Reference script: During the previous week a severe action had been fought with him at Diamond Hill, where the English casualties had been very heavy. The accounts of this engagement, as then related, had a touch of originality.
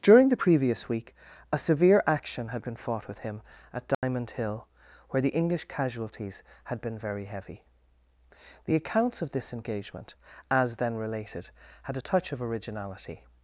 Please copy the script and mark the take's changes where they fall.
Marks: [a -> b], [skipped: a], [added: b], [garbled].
During the previous week a severe action had been fought with him at Diamond Hill, where the English casualties had been very heavy. The accounts of this engagement, as then related, had a touch of originality.